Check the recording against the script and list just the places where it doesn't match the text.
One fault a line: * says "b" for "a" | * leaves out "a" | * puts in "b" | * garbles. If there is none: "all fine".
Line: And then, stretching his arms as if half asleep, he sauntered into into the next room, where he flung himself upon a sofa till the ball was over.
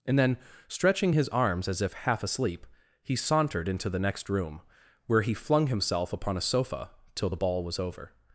* leaves out "into"